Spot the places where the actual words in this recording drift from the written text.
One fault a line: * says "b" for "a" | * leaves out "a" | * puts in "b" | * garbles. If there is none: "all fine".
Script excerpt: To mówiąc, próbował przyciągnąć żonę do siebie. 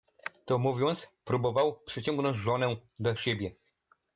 all fine